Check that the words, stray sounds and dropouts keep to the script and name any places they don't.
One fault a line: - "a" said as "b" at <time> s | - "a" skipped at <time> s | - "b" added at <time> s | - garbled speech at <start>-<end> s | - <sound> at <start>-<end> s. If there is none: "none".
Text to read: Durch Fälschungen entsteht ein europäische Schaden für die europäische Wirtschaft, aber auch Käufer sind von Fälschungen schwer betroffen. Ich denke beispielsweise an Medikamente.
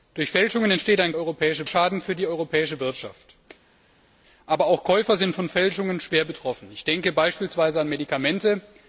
none